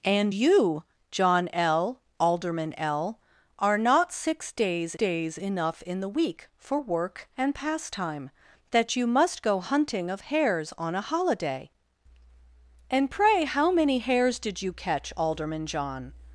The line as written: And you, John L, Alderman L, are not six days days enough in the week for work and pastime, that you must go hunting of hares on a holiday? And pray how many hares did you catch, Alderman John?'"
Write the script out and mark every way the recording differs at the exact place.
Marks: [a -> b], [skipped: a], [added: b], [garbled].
And you, John L, Alderman L, are not six days days enough in the week for work and pastime, that you must go hunting of hares on a holiday? And pray how many hares did you catch, Alderman John?'"